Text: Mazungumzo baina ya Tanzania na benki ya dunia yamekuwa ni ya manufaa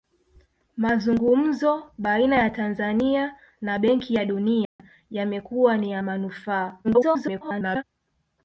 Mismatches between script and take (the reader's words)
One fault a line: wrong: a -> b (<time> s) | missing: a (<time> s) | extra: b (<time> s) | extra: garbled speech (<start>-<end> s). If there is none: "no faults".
extra: garbled speech (6.8-7.8 s)